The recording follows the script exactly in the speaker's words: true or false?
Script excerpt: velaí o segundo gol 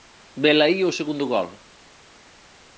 true